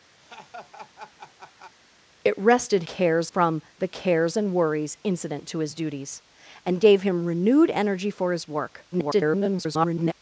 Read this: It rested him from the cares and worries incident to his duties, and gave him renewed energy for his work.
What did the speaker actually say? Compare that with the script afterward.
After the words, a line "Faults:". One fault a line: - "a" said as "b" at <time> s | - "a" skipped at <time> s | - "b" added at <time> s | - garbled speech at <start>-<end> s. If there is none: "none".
It rested cares from the cares and worries incident to his duties, and gave him renewed energy for his work. [garbled]
Faults:
- "him" said as "cares" at 2.8 s
- garbled speech at 8.9-10.1 s